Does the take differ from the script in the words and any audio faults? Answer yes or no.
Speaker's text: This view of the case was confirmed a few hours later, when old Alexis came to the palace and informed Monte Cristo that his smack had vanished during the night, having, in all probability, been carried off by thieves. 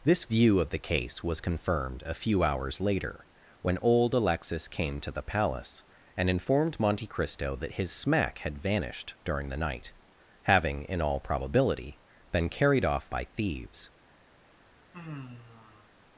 yes